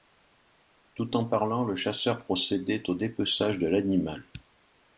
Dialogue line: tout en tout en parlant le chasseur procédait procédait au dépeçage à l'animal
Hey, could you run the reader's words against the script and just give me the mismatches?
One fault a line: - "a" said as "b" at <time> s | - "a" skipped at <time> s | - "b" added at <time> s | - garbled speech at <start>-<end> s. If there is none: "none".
- "tout en" skipped at 1.2 s
- "procédait" skipped at 2.9 s
- "à" said as "de" at 3.6 s